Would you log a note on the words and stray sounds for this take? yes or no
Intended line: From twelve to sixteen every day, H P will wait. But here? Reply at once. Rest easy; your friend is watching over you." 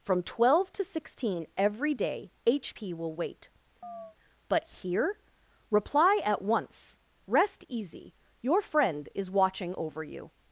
yes